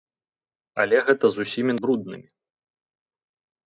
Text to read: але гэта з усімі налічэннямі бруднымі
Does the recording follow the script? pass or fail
fail